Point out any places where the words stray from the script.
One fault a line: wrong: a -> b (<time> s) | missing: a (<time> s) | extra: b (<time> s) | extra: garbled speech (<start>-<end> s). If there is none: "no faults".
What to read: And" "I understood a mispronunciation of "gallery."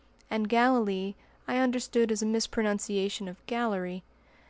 extra: Galilee (0.5 s)
extra: as (2.1 s)